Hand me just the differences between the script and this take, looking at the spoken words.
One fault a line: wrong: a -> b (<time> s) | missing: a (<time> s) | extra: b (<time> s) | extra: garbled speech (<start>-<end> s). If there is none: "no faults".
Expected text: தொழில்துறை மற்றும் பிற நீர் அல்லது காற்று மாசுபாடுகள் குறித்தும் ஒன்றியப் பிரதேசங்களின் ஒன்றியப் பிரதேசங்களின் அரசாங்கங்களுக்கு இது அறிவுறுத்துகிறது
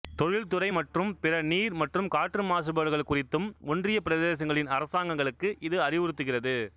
wrong: அல்லது -> மற்றும் (1.8 s)
missing: ஒன்றியப் பிரதேசங்களின் (4.7 s)